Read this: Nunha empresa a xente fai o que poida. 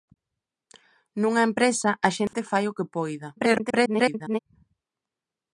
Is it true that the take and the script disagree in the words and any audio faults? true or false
true